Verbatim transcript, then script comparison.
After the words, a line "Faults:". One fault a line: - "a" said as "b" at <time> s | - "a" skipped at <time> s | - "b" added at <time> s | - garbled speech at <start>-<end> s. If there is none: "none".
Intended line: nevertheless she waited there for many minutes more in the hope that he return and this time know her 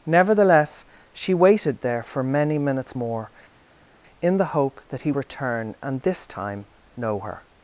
nevertheless she waited there for many minutes more in the hope that he return and this time know her
Faults:
none